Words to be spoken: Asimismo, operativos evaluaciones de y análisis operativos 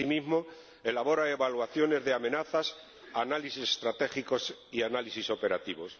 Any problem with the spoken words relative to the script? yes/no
yes